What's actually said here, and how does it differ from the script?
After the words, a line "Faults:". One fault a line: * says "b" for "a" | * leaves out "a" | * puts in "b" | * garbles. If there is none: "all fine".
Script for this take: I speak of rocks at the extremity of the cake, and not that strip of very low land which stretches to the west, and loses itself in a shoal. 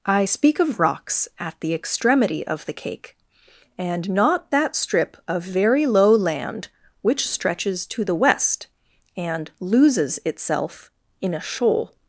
I speak of rocks at the extremity of the cake, and not that strip of very low land which stretches to the west, and loses itself in a shoal.
Faults:
all fine